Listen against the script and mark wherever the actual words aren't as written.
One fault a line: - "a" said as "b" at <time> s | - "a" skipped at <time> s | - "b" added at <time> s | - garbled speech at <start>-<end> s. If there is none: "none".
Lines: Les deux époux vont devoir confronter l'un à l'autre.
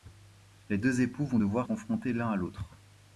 none